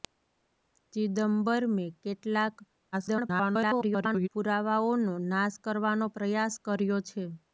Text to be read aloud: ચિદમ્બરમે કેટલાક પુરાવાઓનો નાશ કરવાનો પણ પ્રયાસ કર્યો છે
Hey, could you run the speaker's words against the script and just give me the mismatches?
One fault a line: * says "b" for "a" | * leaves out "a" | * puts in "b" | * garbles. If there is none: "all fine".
* garbles
* leaves out "પણ"